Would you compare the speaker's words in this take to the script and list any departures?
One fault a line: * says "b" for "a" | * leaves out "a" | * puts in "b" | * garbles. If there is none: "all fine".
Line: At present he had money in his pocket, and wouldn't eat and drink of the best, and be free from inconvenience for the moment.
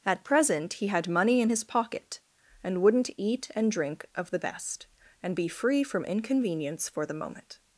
all fine